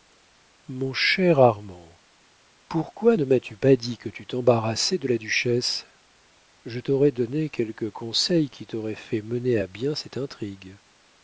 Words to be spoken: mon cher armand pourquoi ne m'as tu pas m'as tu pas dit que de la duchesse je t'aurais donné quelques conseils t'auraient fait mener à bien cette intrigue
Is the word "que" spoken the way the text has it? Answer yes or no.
no